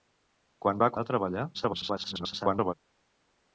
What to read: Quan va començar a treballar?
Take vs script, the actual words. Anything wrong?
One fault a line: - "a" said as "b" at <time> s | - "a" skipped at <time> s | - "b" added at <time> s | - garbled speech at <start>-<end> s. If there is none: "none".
- "començar" skipped at 0.9 s
- garbled speech at 1.5-2.7 s